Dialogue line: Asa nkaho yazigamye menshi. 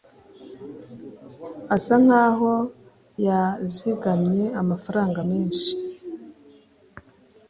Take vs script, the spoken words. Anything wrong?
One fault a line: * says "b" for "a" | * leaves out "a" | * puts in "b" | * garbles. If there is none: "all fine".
* puts in "amafaranga"